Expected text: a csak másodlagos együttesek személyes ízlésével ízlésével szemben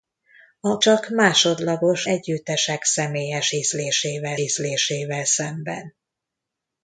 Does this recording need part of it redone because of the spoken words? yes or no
no